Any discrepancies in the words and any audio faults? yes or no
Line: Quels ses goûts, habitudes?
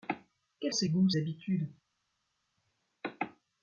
no